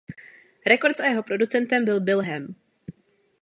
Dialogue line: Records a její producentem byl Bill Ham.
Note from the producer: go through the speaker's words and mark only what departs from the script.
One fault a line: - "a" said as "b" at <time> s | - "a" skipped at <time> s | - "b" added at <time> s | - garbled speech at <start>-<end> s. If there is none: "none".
- "její" said as "jeho" at 1.1 s